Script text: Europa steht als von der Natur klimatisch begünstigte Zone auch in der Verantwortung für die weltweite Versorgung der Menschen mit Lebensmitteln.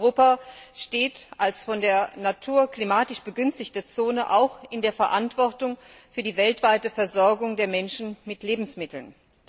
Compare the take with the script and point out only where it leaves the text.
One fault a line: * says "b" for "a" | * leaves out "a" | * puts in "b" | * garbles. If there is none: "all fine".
all fine